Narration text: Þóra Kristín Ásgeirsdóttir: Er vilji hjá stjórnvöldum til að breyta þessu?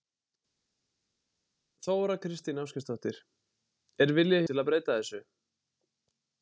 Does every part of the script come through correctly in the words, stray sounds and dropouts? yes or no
no